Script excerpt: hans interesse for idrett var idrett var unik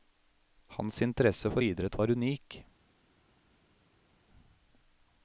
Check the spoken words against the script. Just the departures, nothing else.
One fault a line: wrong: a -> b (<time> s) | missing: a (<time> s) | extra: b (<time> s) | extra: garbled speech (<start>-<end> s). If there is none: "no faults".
missing: idrett var (2.1 s)